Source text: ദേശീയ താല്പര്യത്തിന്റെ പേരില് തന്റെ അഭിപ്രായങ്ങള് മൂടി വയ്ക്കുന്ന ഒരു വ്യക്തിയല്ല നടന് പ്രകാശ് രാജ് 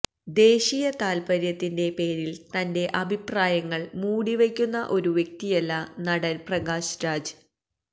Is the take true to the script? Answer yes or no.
yes